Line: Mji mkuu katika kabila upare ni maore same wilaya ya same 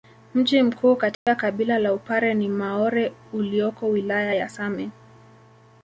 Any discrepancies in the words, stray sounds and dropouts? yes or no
yes